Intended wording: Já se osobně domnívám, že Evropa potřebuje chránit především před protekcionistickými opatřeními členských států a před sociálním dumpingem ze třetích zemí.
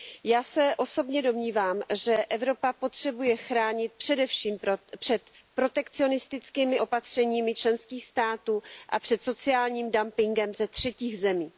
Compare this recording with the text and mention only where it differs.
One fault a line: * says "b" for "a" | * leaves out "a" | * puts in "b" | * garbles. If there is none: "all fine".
all fine